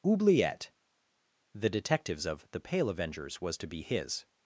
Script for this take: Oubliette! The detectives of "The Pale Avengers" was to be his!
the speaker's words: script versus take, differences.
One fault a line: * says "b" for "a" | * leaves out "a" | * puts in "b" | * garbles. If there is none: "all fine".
all fine